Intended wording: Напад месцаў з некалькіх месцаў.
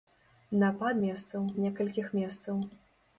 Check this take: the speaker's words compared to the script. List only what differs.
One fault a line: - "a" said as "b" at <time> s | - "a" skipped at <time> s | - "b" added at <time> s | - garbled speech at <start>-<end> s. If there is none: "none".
none